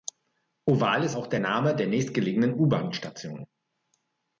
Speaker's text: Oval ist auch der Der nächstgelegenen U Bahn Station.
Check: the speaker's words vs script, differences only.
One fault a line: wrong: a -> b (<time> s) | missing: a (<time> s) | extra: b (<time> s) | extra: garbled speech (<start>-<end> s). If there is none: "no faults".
extra: Name (1.4 s)